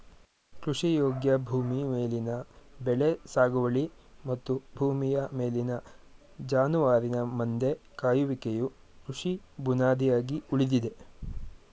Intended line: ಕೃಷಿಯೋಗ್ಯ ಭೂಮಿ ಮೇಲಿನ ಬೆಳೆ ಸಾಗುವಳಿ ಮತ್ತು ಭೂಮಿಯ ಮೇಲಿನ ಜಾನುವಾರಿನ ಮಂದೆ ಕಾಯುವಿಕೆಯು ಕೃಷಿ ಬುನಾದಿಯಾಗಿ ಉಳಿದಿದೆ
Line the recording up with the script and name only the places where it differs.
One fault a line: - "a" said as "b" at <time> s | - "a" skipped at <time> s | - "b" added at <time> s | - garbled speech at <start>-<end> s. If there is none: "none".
none